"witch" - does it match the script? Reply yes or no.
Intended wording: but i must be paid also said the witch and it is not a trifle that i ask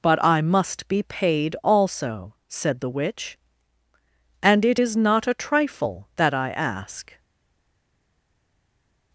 yes